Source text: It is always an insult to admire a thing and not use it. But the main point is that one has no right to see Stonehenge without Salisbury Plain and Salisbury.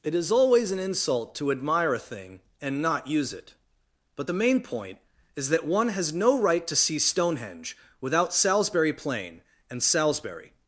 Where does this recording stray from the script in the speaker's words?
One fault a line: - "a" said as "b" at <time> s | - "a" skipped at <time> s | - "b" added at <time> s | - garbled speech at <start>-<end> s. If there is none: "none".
none